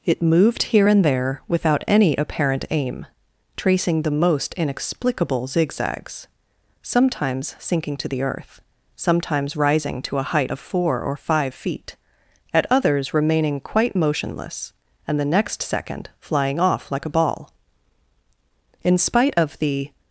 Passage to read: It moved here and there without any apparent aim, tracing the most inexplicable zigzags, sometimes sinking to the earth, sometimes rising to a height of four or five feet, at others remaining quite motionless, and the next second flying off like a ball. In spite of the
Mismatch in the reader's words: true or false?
false